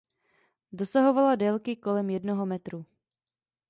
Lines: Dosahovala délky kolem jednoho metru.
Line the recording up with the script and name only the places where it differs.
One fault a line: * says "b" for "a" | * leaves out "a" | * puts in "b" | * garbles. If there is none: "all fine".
all fine